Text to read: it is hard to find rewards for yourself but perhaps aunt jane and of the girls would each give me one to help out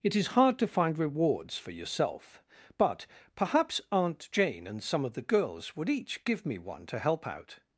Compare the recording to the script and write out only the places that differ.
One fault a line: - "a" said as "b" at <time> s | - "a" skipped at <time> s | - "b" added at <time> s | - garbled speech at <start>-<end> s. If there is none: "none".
- "some" added at 4.8 s